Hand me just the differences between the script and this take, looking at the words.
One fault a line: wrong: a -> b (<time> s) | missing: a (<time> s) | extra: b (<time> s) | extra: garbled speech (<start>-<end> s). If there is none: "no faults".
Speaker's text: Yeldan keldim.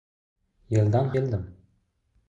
no faults